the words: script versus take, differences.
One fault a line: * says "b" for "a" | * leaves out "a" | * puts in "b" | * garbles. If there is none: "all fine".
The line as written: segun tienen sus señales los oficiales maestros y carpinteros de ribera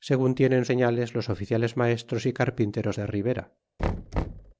* leaves out "sus"